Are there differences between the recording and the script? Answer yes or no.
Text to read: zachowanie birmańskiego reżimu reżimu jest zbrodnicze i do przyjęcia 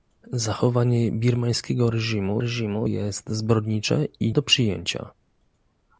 no